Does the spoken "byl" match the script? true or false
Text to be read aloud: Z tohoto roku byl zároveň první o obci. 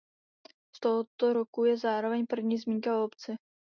false